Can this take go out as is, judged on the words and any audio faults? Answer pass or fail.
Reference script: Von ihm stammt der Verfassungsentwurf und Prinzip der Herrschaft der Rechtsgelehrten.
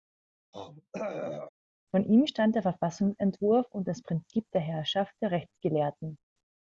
fail